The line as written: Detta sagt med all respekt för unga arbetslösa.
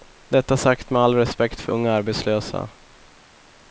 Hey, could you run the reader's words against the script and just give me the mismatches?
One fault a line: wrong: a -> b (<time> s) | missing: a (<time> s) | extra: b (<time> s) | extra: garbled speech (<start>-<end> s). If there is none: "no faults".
no faults